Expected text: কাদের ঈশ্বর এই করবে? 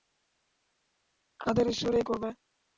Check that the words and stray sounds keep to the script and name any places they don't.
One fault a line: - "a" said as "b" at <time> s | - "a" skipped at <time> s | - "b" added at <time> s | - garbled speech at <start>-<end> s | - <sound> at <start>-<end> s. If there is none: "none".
none